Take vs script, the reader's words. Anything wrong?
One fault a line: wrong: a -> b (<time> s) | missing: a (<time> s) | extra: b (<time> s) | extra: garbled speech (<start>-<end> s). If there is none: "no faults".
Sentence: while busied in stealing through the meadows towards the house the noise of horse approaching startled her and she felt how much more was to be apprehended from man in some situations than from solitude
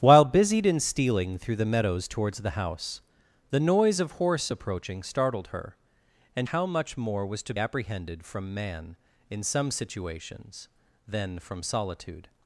missing: she felt (6.5 s)
missing: be (7.5 s)